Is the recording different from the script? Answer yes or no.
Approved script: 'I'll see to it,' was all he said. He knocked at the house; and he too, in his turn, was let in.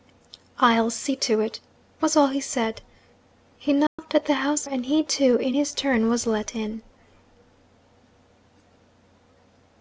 no